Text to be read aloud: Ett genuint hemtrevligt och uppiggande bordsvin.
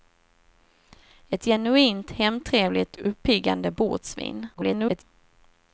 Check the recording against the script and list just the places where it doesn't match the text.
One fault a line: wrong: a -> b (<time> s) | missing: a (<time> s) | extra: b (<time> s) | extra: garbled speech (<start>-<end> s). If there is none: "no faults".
missing: och (3.0 s)
extra: garbled speech (4.5-5.0 s)